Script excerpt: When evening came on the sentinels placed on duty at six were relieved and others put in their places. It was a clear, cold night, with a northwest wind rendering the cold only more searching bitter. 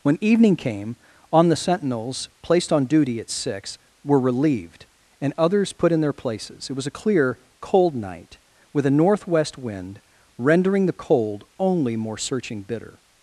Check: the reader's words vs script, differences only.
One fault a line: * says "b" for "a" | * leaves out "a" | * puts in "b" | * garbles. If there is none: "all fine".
all fine